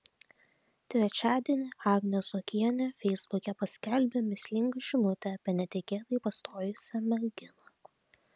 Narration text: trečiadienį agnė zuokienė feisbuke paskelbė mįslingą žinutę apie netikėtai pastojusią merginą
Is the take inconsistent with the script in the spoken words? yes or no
no